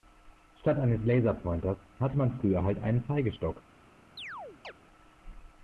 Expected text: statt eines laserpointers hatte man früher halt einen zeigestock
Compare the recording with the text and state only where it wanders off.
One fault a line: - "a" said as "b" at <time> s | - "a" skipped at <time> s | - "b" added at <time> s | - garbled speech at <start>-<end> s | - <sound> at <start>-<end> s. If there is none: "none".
- chirp at 4.2-4.7 s